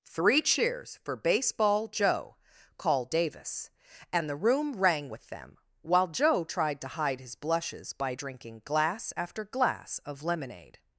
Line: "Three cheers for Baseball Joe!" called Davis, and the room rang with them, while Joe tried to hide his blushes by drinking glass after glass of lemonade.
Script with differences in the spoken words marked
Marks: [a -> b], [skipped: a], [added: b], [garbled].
"Three cheers for Baseball Joe!" called Davis, and the room rang with them, while Joe tried to hide his blushes by drinking glass after glass of lemonade.